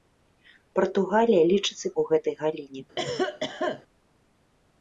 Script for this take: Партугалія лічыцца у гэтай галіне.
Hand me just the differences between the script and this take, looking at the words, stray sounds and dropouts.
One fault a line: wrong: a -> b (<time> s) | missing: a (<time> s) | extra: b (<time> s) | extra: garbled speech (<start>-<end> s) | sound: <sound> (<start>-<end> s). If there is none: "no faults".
sound: cough (3.0-3.8 s)